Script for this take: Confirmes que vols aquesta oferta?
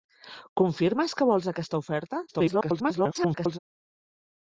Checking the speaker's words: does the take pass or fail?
fail